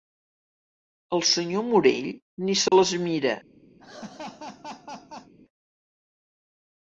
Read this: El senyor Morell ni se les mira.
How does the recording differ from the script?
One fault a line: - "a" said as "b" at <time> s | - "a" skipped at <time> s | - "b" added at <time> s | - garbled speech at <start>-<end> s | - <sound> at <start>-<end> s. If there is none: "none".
- dropout at 2.7-2.7 s
- laugh at 3.8-5.3 s